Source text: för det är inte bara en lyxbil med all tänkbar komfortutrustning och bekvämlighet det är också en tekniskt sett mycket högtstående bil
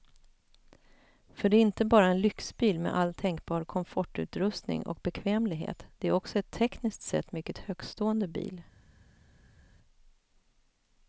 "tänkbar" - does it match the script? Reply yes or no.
yes